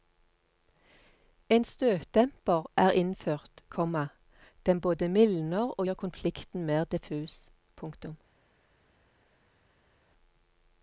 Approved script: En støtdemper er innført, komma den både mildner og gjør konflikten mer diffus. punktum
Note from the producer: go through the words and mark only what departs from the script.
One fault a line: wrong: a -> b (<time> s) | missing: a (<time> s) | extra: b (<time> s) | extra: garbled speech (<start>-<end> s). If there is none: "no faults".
no faults